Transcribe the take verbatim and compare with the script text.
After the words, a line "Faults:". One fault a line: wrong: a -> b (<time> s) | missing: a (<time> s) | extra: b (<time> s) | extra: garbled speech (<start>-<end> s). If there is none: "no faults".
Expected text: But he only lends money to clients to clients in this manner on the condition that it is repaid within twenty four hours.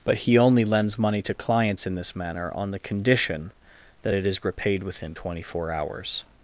But he only lends money to clients in this manner on the condition that it is repaid within twenty four hours.
Faults:
missing: to clients (1.9 s)